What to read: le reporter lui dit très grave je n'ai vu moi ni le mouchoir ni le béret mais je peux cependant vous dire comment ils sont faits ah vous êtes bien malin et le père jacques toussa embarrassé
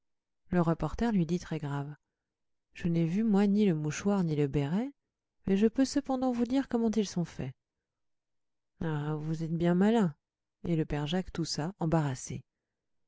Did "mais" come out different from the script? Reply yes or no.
no